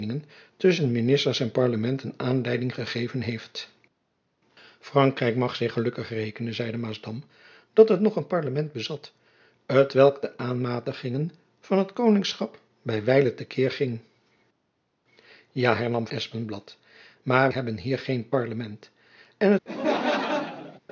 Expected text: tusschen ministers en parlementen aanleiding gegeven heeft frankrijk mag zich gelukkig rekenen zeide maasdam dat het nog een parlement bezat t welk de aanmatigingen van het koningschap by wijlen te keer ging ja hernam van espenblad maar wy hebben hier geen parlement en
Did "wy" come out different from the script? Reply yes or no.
yes